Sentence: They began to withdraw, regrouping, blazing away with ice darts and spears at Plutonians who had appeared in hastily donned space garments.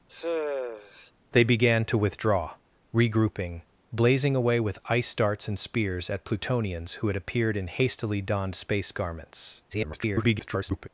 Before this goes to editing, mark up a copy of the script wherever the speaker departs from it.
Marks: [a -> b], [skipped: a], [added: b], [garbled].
They began to withdraw, regrouping, blazing away with ice darts and spears at Plutonians who had appeared in hastily donned space garments. [garbled]